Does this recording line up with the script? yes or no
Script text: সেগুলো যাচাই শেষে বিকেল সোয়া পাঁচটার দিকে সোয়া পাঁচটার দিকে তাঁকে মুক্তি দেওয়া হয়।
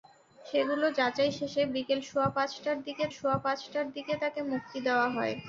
yes